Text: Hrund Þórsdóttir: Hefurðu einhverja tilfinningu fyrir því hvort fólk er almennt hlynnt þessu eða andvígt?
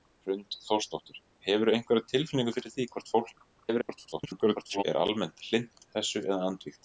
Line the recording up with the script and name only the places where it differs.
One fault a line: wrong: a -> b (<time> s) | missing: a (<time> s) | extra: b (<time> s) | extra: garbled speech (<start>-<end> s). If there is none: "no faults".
extra: garbled speech (3.6-4.8 s)